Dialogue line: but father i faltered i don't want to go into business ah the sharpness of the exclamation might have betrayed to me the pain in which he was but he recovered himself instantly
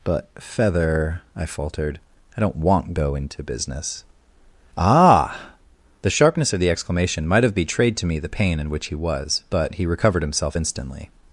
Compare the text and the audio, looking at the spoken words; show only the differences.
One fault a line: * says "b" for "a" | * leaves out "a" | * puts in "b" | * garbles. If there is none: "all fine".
* says "feather" for "father"
* leaves out "to"